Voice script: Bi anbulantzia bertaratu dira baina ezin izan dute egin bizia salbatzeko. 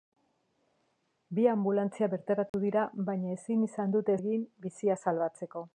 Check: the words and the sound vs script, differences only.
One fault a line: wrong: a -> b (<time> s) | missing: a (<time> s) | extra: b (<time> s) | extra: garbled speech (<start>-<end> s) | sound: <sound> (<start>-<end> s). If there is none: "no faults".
sound: dropout (2.5-2.5 s)